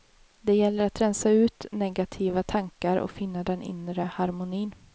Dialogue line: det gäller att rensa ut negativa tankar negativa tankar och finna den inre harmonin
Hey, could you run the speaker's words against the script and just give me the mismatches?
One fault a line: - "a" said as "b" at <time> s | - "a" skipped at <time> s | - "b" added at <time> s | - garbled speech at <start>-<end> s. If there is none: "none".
- "negativa tankar" skipped at 3.0 s